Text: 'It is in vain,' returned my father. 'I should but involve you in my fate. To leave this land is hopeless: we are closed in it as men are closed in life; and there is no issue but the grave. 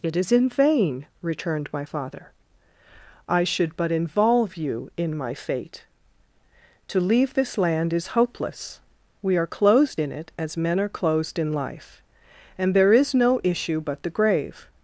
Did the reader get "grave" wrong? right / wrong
right